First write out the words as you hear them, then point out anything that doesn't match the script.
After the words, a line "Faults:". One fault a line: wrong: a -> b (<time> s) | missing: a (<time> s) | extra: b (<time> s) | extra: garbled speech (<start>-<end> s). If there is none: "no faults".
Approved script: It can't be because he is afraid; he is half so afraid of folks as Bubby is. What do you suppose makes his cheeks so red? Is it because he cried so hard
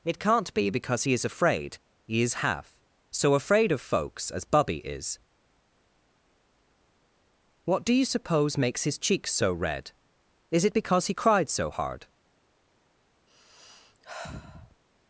It can't be because he is afraid; he is half so afraid of folks as Bubby is. What do you suppose makes his cheeks so red? Is it because he cried so hard
Faults:
no faults